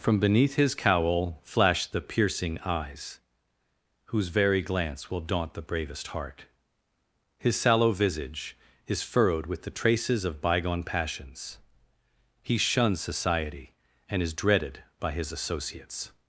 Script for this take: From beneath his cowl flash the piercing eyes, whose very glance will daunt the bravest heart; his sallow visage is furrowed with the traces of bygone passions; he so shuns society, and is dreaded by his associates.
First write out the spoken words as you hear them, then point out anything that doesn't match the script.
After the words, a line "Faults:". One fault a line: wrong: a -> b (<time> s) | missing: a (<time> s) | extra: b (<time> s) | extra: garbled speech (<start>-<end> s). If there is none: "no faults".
From beneath his cowl flash the piercing eyes, whose very glance will daunt the bravest heart; his sallow visage is furrowed with the traces of bygone passions; he shuns society, and is dreaded by his associates.
Faults:
missing: so (12.6 s)